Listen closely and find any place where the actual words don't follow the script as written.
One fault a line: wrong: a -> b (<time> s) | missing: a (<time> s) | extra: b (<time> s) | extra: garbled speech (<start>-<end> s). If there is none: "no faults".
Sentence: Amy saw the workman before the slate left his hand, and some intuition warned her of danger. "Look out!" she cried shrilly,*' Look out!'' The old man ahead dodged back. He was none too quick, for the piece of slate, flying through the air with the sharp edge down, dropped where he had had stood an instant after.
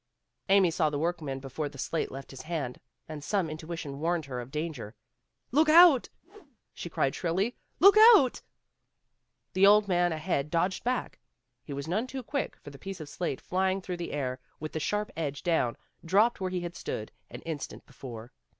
missing: had (16.8 s)
wrong: after -> before (17.8 s)